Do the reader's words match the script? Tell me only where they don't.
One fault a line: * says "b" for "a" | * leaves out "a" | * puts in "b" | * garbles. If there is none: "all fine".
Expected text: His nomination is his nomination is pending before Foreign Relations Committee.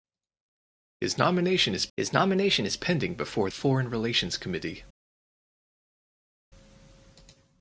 all fine